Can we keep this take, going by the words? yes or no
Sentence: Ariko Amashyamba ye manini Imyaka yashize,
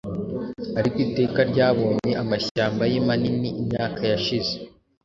no